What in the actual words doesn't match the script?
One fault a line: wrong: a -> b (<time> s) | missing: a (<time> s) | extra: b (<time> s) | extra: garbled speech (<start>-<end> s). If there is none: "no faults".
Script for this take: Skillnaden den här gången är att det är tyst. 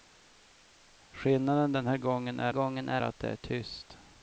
extra: gången är (2.5 s)